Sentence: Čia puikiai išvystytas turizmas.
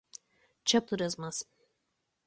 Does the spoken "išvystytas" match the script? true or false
false